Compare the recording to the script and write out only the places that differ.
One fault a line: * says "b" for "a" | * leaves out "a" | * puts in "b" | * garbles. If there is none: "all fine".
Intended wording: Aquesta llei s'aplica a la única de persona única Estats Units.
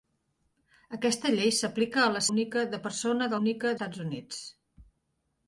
all fine